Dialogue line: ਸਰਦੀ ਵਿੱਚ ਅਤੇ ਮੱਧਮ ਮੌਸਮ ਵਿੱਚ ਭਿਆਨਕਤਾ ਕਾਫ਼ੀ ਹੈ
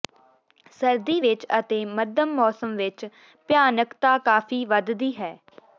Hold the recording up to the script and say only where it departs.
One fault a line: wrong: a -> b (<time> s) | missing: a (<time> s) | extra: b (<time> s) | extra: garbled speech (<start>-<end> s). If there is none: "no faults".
extra: ਵਧਦੀ (4.7 s)